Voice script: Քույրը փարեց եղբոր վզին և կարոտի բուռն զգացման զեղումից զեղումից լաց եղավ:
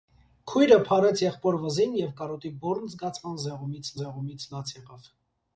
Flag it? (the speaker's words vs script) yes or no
no